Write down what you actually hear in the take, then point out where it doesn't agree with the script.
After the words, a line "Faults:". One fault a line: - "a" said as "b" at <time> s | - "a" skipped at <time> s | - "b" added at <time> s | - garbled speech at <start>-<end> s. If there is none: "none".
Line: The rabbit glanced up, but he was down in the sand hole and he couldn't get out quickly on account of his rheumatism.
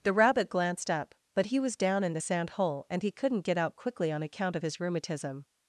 The rabbit glanced up, but he was down in the sand hole and he couldn't get out quickly on account of his rheumatism.
Faults:
none